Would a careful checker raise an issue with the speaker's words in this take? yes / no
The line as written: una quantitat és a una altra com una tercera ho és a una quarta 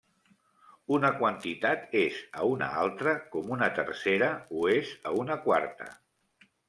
no